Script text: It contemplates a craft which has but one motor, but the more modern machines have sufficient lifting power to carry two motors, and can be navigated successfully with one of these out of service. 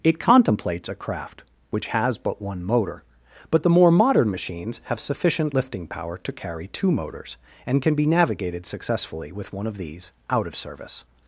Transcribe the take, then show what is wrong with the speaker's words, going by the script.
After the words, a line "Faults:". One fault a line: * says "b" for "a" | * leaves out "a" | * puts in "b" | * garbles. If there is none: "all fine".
It contemplates a craft which has but one motor, but the more modern machines have sufficient lifting power to carry two motors, and can be navigated successfully with one of these out of service.
Faults:
all fine